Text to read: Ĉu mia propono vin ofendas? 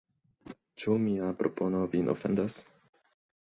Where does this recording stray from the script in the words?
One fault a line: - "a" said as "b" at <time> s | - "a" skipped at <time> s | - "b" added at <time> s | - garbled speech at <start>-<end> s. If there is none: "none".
none